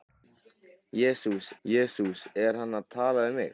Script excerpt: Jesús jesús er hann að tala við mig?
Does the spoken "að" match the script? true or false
true